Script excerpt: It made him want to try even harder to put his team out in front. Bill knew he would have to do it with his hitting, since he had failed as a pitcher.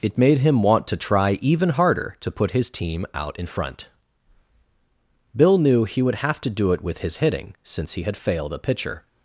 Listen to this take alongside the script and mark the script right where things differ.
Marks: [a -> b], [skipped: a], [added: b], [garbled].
It made him want to try even harder to put his team out in front. Bill knew he would have to do it with his hitting, since he had failed [skipped: as] a pitcher.